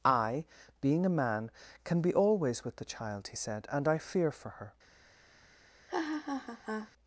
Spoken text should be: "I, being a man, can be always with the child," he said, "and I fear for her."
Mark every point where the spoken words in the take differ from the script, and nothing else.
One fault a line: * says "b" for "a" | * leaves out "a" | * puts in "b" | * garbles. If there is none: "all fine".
all fine